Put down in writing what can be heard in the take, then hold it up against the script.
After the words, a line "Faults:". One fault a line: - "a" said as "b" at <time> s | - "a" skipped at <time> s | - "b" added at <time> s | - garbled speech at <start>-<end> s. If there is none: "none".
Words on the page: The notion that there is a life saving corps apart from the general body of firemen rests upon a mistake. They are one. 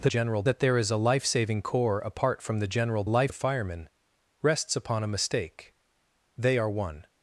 The general that there is a life saving corps apart from the general life of firemen rests upon a mistake. They are one.
Faults:
- "notion" said as "general" at 0.0 s
- "body" said as "life" at 3.0 s